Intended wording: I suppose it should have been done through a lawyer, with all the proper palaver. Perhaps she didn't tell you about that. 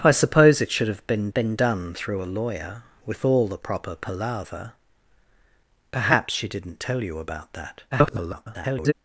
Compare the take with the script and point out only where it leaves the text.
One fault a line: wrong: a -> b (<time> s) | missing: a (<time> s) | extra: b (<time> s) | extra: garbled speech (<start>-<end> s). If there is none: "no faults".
extra: been (1.3 s)
extra: garbled speech (7.9-8.9 s)